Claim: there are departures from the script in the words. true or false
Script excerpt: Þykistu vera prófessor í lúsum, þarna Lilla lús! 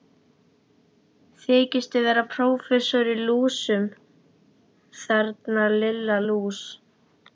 false